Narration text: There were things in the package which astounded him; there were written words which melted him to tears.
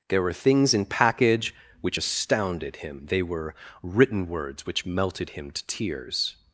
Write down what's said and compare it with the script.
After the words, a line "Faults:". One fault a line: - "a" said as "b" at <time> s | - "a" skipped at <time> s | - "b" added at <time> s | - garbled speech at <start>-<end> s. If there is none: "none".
There were things in package which astounded him; they were written words which melted him to tears.
Faults:
- "the" skipped at 0.8 s
- "there" said as "they" at 3.1 s